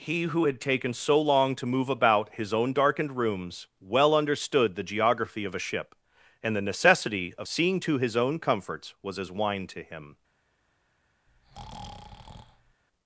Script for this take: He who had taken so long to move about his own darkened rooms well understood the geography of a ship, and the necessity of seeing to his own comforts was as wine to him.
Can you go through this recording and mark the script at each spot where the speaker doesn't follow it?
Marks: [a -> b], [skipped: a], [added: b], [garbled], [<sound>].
He who had taken so long to move about his own darkened rooms well understood the geography of a ship, and the necessity of seeing to his own comforts was as wine to him. [breath]